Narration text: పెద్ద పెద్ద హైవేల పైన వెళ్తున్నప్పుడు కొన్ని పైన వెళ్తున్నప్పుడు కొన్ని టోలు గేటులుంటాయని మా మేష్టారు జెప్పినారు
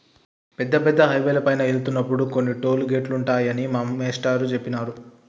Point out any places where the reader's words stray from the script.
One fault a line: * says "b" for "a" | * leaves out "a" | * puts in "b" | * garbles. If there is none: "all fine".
* leaves out "పైన వెళ్తున్నప్పుడు కొన్ని"